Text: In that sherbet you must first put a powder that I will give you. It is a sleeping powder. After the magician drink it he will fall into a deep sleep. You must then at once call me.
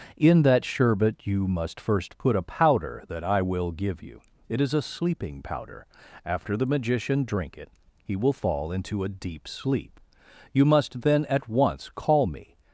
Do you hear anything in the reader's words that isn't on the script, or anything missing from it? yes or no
no